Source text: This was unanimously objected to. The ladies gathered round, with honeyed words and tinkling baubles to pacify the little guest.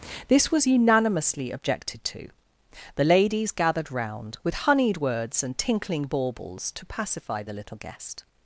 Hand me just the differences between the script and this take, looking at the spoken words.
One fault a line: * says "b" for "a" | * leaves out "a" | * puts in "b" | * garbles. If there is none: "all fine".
all fine